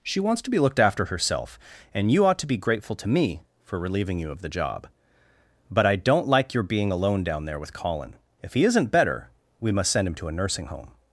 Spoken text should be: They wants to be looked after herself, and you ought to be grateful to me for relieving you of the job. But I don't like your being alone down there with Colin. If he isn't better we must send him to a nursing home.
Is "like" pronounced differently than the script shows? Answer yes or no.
no